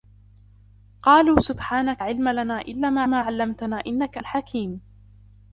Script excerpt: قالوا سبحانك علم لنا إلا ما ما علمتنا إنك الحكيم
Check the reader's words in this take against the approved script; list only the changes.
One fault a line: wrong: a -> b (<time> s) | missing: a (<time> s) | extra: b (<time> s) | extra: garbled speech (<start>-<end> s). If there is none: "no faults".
no faults